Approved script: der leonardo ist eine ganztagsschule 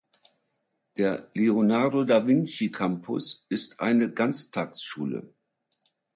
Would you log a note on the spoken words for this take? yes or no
yes